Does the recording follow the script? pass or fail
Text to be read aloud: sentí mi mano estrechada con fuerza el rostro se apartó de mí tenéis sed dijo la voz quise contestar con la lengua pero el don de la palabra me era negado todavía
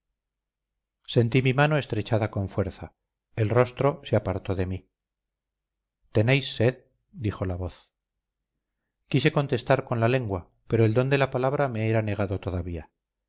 pass